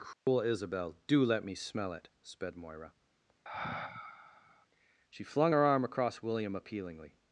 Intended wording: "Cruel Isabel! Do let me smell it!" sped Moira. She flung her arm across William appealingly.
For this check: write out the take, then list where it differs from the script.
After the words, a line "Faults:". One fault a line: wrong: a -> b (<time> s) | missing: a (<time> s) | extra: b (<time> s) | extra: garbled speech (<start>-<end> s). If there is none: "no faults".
"Cruel Isabel! Do let me smell it!" sped Moira. She flung her arm across William appealingly.
Faults:
no faults